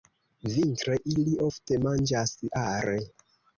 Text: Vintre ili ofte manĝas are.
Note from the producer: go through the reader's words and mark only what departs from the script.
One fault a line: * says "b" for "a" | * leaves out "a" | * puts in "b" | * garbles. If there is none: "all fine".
all fine